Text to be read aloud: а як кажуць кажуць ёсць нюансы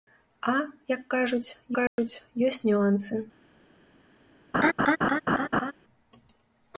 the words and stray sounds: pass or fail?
fail